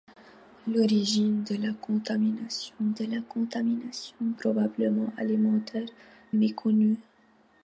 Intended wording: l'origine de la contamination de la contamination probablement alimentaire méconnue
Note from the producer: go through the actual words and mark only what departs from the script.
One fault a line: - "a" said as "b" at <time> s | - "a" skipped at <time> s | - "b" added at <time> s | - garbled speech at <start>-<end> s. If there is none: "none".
none